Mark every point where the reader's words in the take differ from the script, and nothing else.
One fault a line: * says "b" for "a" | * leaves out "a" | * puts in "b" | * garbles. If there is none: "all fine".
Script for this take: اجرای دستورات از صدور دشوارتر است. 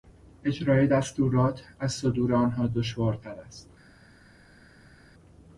* puts in "آنها"